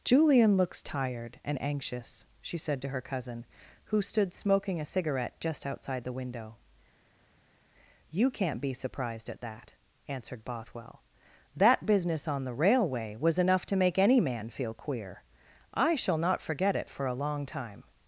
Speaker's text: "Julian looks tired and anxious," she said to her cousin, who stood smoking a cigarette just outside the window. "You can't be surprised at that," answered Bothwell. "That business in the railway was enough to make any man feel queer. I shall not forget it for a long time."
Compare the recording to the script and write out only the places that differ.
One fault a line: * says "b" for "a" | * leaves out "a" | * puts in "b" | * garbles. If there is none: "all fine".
* says "on" for "in"